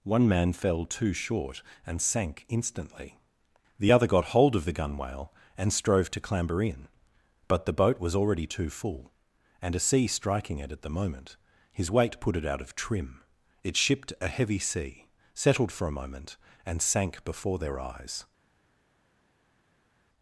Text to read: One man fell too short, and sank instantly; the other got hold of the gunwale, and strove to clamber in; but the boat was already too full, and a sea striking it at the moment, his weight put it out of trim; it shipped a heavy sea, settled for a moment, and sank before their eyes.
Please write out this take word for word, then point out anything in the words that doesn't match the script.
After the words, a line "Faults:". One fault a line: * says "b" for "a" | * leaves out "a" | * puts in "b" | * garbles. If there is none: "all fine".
One man fell too short, and sank instantly; the other got hold of the gunwale, and strove to clamber in; but the boat was already too full, and a sea striking it at the moment, his weight put it out of trim; it shipped a heavy sea, settled for a moment, and sank before their eyes.
Faults:
all fine